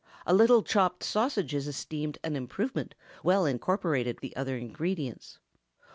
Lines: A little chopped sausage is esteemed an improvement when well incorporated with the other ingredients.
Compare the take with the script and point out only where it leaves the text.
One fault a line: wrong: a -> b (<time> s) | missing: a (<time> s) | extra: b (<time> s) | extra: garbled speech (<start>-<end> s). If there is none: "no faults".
missing: when (3.0 s)
missing: with (4.2 s)